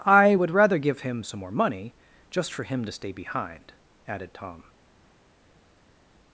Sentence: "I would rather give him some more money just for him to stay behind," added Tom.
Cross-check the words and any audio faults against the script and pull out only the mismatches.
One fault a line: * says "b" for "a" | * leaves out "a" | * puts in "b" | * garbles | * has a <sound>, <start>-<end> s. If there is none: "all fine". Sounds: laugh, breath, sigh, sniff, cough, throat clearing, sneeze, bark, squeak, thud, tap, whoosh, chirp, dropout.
all fine